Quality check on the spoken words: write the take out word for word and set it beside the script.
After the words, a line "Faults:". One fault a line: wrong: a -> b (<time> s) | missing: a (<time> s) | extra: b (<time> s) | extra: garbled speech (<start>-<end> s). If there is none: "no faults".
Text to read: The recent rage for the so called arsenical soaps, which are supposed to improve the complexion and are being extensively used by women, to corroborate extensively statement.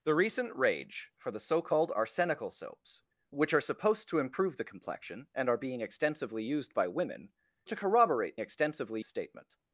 The recent rage for the so called arsenical soaps, which are supposed to improve the complexion and are being extensively used by women, to corroborate extensively statement.
Faults:
no faults